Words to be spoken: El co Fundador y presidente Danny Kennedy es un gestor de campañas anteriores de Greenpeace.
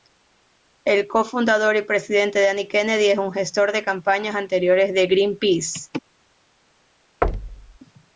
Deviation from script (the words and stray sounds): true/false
true